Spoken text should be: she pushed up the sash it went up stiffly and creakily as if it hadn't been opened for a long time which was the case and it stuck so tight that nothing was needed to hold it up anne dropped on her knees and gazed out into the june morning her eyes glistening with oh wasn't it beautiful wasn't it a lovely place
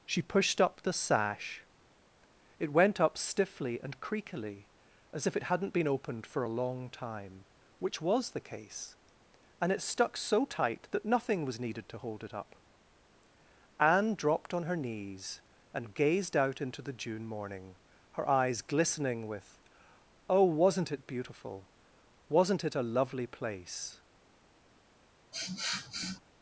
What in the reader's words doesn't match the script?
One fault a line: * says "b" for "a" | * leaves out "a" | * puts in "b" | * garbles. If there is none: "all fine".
all fine